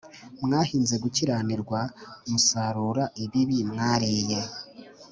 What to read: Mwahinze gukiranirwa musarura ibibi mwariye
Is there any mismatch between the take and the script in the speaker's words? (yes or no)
no